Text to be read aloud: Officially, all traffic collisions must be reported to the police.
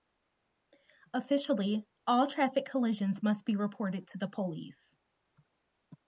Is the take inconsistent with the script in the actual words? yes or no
no